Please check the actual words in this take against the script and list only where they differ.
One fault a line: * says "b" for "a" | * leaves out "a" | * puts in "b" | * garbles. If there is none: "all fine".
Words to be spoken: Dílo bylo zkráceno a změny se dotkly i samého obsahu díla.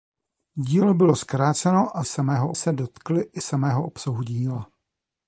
* says "samého" for "změny"